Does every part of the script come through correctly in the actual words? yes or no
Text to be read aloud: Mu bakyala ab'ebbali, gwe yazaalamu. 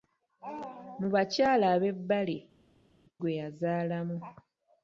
yes